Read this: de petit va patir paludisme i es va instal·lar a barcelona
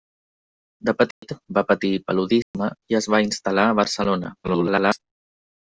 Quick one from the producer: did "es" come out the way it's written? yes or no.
yes